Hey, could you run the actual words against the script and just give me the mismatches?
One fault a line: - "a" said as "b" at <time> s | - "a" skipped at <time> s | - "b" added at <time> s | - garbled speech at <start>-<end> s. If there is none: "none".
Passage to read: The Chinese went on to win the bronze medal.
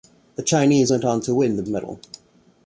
- "bronze" skipped at 1.6 s